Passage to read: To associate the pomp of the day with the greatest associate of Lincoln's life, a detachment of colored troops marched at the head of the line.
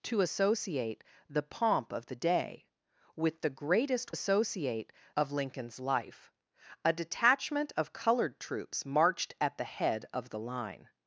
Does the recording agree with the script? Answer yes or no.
yes